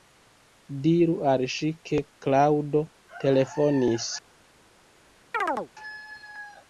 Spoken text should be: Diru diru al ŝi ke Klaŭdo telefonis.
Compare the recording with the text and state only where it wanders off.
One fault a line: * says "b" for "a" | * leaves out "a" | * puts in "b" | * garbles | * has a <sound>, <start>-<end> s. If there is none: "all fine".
* leaves out "diru"
* has a chirp, 5.3-5.7 s